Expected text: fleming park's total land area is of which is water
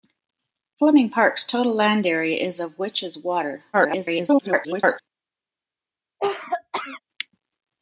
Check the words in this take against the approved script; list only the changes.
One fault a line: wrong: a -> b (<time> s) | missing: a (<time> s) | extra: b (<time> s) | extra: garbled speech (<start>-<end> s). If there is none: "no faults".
extra: garbled speech (3.7-5.0 s)